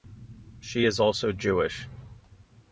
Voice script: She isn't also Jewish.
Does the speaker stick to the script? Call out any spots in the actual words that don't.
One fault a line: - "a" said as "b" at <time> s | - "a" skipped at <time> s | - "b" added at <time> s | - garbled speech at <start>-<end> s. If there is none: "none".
- "isn't" said as "is" at 0.9 s